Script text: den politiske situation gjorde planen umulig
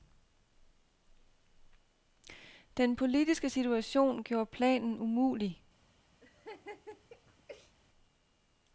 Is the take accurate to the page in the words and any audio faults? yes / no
no